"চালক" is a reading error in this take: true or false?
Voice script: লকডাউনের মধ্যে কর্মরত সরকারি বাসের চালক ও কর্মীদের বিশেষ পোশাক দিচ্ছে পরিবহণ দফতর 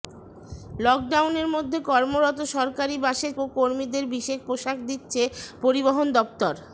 true